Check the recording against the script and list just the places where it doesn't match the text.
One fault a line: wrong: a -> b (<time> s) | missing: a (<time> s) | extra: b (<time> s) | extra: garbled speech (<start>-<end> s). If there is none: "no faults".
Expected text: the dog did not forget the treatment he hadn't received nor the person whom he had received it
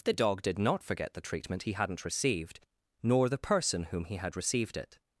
no faults